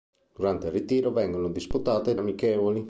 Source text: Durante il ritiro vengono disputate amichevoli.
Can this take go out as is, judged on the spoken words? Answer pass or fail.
pass